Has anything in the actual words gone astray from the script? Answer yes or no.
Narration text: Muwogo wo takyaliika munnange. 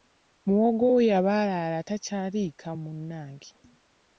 yes